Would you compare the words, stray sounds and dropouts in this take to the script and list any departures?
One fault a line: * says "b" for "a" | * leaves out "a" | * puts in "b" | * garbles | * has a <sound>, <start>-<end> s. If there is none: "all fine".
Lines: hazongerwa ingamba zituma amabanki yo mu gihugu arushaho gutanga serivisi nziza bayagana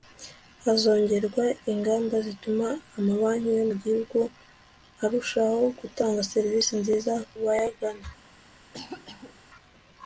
* has a cough, 8.7-9.4 s